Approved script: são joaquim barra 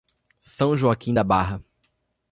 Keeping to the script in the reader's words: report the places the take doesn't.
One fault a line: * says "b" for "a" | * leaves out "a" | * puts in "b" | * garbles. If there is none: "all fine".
* puts in "da"